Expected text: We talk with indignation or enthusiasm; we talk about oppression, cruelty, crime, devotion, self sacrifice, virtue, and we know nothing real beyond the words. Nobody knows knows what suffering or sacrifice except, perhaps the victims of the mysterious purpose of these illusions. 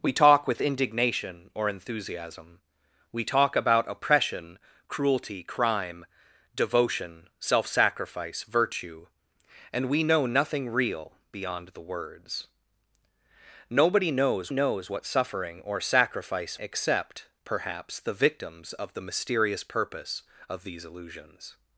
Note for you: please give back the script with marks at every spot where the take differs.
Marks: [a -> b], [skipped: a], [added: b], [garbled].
We talk with indignation or enthusiasm; we talk about oppression, cruelty, crime, devotion, self sacrifice, virtue, and we know nothing real beyond the words. Nobody knows knows what suffering or sacrifice except, perhaps the victims of the mysterious purpose of these illusions.